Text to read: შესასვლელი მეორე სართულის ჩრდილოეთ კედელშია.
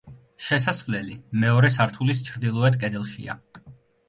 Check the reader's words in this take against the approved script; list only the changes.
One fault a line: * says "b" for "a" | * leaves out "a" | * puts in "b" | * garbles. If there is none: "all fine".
all fine